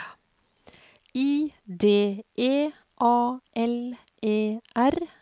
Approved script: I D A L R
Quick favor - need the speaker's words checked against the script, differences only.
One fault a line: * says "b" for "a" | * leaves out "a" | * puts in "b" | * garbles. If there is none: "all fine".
* puts in "E"
* puts in "E"